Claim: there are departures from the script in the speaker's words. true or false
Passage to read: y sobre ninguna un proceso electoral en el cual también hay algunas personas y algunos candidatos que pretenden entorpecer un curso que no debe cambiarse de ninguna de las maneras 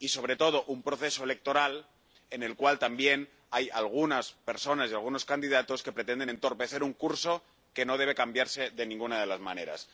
true